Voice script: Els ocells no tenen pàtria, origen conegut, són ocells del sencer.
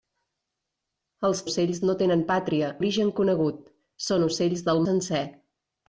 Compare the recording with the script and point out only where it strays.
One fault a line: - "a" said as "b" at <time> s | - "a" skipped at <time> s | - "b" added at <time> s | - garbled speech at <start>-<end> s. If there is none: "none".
none